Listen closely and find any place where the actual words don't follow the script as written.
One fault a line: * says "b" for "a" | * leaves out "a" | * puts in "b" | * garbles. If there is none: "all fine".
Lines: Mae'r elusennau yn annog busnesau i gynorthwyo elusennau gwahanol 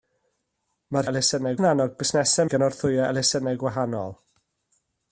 all fine